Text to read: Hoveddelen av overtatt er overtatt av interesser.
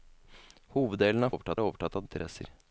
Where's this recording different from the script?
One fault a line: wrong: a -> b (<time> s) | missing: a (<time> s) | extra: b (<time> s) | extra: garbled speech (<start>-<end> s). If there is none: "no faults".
no faults